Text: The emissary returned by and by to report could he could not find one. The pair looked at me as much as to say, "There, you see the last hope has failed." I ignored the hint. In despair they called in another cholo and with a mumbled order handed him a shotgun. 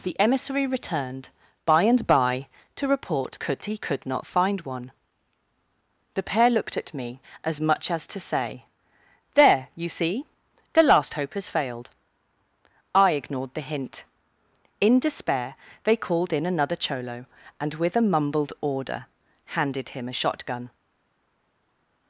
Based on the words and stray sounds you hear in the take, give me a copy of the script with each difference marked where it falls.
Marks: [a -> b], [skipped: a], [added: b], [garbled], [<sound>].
The emissary returned by and by to report could he could not find one. The pair looked at me as much as to say, "There, you see the last hope has failed." I ignored the hint. In despair they called in another cholo and with a mumbled order handed him a shotgun.